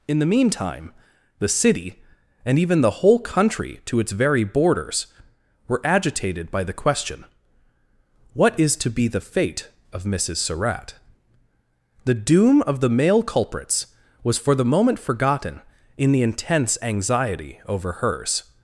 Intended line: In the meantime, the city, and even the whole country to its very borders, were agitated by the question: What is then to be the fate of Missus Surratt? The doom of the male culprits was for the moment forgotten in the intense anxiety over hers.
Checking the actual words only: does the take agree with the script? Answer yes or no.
no